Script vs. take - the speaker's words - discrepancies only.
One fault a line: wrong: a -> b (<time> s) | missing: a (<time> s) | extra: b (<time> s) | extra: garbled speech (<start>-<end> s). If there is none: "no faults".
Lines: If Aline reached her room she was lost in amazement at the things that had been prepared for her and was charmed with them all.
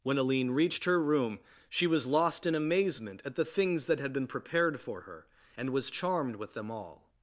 wrong: If -> When (0.0 s)